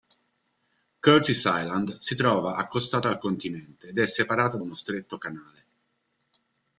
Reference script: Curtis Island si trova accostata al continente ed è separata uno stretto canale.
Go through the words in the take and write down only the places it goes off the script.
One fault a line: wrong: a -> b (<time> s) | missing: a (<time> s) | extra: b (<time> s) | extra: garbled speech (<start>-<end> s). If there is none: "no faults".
no faults